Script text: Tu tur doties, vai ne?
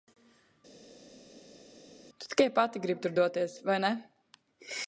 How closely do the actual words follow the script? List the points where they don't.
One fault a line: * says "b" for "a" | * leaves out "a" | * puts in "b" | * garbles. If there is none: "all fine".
* puts in "tikai pati gribi"